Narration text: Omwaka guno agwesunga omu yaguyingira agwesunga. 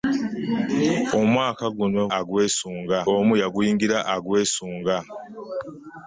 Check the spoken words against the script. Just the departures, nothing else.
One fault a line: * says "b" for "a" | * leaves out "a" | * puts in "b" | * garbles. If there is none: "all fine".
all fine